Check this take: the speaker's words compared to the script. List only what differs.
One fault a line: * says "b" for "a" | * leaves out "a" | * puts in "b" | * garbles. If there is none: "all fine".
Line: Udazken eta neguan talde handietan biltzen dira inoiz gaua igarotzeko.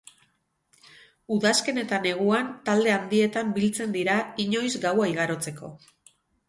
all fine